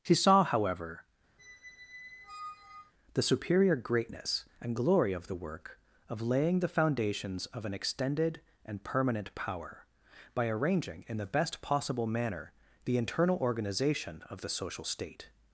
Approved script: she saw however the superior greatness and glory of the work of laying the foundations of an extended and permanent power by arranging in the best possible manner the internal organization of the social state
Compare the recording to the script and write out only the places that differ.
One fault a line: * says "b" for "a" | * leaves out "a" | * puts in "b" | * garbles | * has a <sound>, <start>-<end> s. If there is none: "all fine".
* has a squeak, 1.4-2.9 s